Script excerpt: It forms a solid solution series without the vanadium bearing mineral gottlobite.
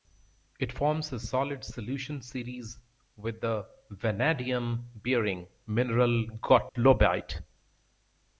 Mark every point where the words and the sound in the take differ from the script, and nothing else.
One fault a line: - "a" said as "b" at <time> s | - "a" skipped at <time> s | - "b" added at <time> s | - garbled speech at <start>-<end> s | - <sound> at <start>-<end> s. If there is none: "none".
- "without" said as "with" at 3.1 s
- dropout at 6.7-6.8 s